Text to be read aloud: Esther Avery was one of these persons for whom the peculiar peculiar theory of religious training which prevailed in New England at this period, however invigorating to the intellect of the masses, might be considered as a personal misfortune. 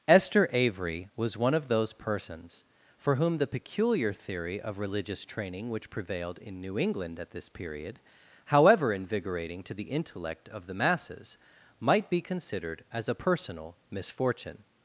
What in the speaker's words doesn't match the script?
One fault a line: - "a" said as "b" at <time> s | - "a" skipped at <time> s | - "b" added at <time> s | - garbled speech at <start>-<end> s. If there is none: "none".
- "these" said as "those" at 1.7 s
- "peculiar" skipped at 4.1 s